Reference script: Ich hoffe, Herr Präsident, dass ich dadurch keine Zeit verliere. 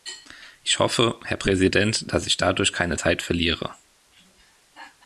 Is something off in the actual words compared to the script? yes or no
no